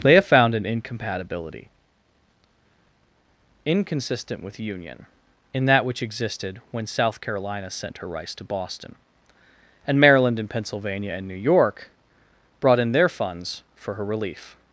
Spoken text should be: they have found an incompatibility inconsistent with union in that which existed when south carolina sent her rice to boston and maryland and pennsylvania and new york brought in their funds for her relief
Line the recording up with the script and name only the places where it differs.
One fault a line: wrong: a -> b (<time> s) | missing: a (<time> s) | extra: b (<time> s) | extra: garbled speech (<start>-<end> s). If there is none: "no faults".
no faults